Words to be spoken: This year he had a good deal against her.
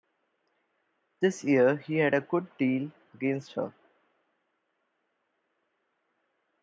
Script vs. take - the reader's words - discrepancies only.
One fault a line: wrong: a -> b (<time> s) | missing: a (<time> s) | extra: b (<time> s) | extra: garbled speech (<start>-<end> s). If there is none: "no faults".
no faults